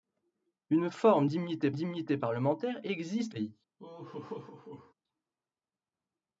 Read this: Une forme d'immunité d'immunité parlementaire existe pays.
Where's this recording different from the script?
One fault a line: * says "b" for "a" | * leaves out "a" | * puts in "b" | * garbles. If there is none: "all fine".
all fine